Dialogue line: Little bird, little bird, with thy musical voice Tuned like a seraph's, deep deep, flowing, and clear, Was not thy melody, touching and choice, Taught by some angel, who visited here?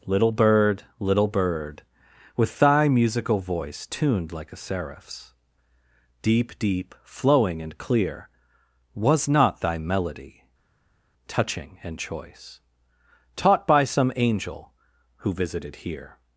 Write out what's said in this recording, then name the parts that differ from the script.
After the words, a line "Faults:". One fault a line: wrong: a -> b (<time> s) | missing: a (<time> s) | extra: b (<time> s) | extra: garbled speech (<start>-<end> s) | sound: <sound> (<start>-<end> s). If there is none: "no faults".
Little bird, little bird, with thy musical voice Tuned like a seraph's, deep deep, flowing, and clear, Was not thy melody, touching and choice, Taught by some angel, who visited here?
Faults:
no faults